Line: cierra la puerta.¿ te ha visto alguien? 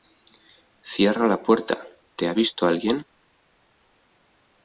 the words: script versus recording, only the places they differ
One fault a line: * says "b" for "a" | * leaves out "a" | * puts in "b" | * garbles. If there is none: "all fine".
all fine